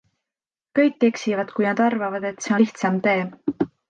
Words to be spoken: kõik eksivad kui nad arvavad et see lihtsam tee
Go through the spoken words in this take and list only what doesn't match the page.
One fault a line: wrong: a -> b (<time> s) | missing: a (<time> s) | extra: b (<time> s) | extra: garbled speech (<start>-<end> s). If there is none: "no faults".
no faults